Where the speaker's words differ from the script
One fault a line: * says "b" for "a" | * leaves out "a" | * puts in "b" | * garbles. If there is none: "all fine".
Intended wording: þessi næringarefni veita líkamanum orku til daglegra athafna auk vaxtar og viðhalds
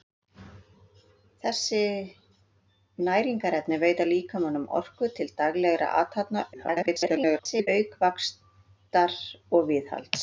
* garbles